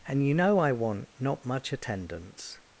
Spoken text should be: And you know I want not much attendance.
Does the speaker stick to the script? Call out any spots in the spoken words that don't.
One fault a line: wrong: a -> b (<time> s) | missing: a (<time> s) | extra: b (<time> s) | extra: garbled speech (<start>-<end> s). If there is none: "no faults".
no faults